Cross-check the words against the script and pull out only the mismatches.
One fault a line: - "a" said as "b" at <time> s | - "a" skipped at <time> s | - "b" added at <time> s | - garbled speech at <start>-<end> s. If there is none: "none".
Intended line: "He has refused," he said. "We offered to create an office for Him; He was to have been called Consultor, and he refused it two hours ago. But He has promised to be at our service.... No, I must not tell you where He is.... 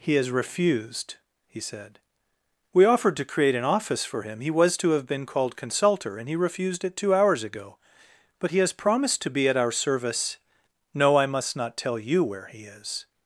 none